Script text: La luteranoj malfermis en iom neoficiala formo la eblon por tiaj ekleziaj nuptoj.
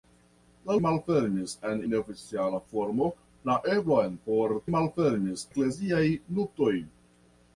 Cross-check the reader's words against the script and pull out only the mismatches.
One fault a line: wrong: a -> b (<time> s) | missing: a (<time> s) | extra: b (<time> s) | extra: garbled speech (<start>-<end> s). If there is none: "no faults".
missing: luteranoj (0.8 s)
missing: iom (1.8 s)
wrong: tiaj -> malfermis (4.7 s)